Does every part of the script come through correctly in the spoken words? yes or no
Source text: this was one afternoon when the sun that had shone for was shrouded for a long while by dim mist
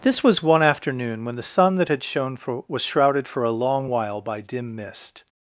yes